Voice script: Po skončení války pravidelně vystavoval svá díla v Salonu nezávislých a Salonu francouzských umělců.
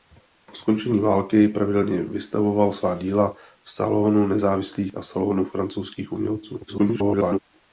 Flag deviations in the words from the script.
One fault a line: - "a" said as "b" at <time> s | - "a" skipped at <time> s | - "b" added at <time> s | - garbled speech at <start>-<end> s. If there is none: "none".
- garbled speech at 6.7-7.4 s